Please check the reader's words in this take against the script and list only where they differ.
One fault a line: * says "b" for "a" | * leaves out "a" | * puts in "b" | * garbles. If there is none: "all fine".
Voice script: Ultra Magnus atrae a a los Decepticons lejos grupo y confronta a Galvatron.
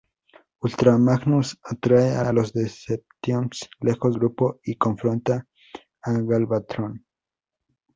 all fine